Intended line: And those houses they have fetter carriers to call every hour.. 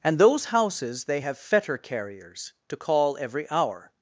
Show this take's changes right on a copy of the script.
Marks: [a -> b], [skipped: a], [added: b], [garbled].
And those houses they have fetter carriers to call every hour..